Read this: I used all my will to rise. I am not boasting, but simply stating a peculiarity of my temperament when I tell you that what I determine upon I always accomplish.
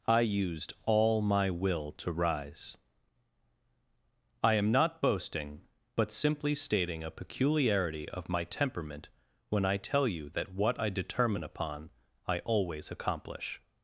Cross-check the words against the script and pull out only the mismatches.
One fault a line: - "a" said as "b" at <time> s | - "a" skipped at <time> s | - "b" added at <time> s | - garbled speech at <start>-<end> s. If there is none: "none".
none